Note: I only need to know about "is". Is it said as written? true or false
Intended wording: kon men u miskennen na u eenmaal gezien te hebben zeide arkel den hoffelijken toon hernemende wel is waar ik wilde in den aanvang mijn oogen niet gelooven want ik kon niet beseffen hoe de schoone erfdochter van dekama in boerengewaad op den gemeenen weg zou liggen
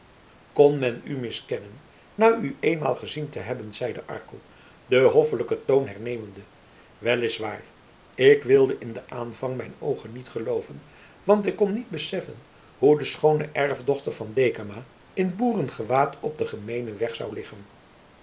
true